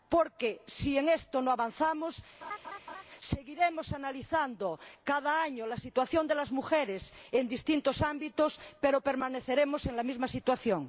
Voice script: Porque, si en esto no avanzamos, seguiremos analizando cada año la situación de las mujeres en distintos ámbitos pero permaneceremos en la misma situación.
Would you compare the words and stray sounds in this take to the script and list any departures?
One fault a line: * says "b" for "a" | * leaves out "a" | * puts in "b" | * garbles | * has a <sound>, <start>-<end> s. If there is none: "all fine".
* has a laugh, 2.4-3.0 s